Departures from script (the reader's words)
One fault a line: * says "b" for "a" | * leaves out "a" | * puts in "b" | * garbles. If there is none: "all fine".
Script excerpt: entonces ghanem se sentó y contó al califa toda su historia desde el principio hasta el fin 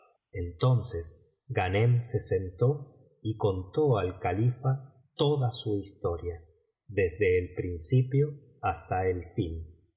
all fine